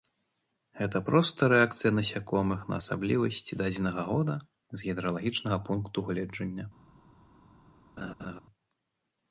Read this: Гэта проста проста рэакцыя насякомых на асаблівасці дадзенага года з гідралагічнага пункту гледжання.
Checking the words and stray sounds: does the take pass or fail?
fail